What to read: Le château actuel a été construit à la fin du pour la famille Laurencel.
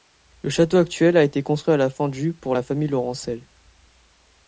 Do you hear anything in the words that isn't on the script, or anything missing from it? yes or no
no